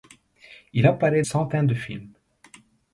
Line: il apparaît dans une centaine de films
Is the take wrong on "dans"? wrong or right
wrong